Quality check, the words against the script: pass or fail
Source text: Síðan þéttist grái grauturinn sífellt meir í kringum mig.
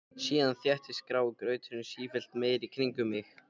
pass